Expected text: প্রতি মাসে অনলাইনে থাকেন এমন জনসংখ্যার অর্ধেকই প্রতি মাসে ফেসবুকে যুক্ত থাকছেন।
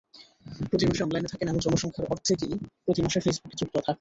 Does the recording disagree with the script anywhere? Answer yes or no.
no